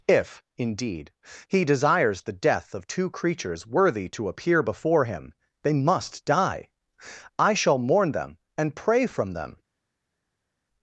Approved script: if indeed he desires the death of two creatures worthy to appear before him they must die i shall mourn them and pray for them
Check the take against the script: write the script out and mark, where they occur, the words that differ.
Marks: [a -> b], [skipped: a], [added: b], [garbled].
if indeed he desires the death of two creatures worthy to appear before him they must die i shall mourn them and pray [for -> from] them